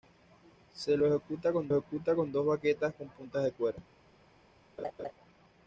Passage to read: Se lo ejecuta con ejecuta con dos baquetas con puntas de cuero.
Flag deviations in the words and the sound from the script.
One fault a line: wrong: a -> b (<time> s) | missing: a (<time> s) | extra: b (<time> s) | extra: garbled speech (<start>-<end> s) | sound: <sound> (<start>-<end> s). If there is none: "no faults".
sound: laugh (4.8-5.1 s)